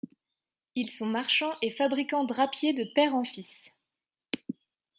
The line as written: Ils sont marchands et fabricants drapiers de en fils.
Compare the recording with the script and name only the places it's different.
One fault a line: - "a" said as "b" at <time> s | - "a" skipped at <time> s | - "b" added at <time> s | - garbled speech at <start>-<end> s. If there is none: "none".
- "père" added at 3.0 s